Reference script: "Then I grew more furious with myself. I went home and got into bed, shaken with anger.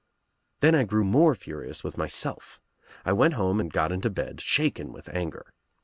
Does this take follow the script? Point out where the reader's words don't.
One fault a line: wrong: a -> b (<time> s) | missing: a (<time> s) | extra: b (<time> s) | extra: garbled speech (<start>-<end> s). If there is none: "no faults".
no faults